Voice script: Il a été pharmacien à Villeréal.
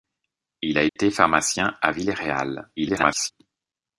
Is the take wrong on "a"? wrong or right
right